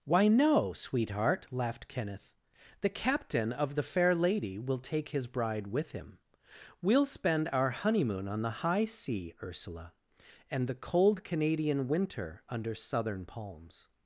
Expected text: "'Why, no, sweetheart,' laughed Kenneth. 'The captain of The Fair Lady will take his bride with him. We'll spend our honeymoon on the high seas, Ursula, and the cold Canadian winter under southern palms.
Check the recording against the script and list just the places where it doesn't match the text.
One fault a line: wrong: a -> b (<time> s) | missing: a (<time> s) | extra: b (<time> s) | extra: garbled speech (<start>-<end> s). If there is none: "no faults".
wrong: seas -> sea (8.8 s)